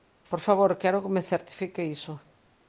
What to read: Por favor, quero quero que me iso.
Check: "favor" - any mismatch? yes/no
no